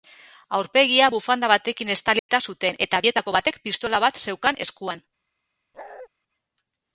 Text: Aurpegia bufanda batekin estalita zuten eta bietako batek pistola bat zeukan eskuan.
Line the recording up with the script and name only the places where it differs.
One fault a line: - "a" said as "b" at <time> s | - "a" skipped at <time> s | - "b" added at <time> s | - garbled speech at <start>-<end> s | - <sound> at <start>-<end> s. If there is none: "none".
- dropout at 2.2-2.3 s
- bark at 5.7-6.1 s